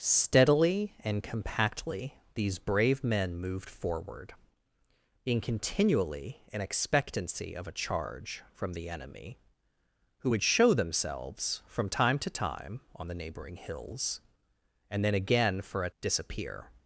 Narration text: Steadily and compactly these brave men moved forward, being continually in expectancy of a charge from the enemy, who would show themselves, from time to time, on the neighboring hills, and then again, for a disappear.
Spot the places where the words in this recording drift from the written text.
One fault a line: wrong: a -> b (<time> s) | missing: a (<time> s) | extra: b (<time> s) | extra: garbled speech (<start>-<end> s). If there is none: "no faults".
no faults